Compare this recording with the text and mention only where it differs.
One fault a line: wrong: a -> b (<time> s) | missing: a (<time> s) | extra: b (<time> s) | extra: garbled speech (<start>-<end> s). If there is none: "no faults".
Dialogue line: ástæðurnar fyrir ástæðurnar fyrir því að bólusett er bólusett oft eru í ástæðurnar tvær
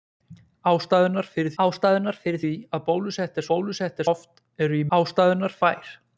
no faults